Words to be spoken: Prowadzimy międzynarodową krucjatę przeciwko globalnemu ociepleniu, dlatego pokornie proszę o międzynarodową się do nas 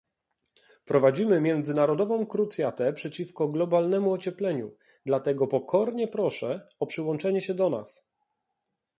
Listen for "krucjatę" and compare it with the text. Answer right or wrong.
right